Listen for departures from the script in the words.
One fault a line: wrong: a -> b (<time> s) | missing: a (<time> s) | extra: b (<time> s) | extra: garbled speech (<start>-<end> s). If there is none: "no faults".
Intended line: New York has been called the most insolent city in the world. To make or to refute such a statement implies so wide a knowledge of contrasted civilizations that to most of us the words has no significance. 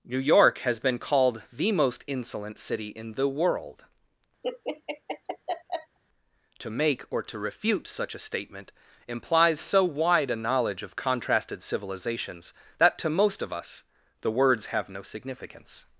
wrong: has -> have (14.7 s)